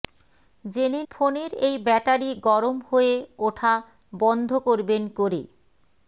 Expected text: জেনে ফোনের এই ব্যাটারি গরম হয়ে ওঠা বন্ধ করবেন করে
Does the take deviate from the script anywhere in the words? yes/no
no